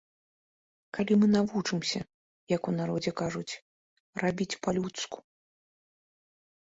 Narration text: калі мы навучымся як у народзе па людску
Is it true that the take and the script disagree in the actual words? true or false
true